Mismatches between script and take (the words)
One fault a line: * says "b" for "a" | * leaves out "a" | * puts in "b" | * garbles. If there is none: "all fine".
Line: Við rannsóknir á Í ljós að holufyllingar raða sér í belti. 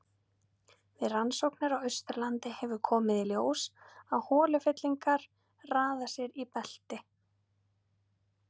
* puts in "Austurlandi hefur komið"